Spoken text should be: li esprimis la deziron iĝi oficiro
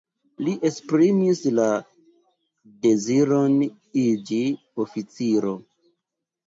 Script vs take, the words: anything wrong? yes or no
no